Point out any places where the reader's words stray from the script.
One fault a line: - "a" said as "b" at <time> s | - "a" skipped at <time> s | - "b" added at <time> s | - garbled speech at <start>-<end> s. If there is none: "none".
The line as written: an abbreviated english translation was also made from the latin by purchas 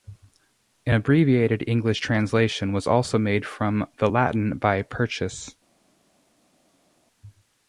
none